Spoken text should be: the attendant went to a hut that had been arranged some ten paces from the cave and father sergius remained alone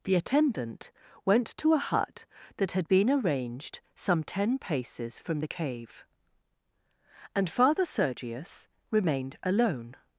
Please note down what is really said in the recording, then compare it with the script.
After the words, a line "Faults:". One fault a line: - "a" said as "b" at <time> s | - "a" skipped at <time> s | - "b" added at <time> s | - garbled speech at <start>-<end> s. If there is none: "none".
the attendant went to a hut that had been arranged some ten paces from the cave and father sergius remained alone
Faults:
none